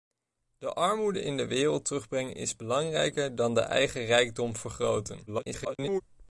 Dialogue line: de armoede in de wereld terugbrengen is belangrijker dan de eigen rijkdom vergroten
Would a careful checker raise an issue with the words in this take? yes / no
yes